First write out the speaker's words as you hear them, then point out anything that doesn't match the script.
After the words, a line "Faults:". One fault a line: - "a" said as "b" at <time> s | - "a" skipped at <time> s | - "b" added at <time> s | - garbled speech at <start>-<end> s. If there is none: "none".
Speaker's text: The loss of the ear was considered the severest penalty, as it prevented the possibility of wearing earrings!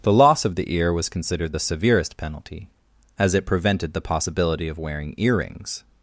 The loss of the ear was considered the severest penalty, as it prevented the possibility of wearing earrings!
Faults:
none